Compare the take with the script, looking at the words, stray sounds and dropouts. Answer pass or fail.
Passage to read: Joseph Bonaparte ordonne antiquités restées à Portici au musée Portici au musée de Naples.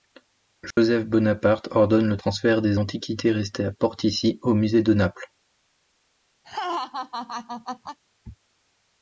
fail